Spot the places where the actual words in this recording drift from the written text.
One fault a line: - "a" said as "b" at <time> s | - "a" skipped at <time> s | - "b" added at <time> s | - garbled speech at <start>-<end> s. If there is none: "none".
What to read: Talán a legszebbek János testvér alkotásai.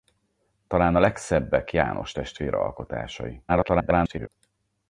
- garbled speech at 3.5-4.3 s